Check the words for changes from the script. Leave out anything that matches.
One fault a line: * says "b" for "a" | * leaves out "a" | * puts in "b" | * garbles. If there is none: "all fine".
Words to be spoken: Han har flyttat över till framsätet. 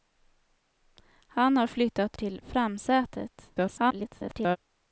* leaves out "över"
* garbles